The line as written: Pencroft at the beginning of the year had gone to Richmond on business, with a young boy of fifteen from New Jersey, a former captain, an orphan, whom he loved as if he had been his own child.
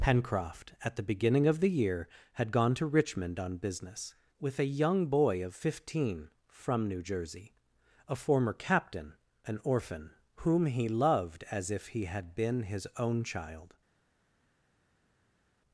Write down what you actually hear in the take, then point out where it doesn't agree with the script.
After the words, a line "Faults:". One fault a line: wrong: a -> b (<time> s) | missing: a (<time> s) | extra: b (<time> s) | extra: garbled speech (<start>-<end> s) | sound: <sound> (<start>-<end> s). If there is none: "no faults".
Pencroft at the beginning of the year had gone to Richmond on business, with a young boy of fifteen from New Jersey, a former captain, an orphan, whom he loved as if he had been his own child.
Faults:
no faults